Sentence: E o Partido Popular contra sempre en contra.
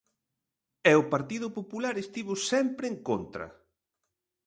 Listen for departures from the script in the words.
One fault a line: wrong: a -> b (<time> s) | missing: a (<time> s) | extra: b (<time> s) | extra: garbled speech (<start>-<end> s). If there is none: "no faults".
wrong: contra -> estivo (2.0 s)